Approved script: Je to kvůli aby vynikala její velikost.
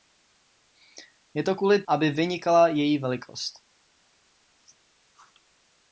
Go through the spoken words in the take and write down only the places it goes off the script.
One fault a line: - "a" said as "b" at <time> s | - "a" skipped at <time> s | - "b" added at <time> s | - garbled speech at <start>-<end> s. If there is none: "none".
none